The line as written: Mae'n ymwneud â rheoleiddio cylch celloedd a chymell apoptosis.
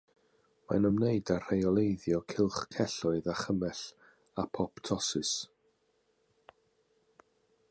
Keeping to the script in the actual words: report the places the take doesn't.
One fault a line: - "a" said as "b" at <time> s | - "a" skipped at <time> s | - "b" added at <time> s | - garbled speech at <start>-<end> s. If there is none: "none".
none